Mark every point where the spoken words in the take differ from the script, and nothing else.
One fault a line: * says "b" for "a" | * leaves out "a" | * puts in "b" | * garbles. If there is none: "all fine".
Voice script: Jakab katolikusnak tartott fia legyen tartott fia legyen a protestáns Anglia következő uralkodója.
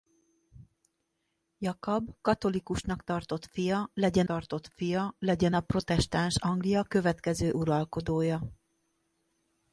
all fine